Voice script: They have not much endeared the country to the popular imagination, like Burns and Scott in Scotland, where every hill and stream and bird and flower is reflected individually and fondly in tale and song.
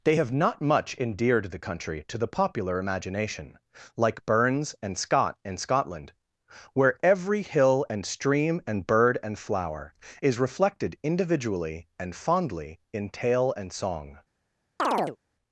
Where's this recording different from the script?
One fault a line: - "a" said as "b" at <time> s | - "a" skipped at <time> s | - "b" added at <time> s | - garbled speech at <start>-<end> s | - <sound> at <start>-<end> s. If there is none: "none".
- chirp at 14.8-15.2 s